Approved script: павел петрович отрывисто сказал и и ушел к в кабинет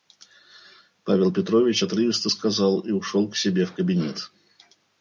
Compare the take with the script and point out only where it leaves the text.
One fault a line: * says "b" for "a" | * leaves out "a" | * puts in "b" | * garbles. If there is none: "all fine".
* leaves out "и"
* puts in "себе"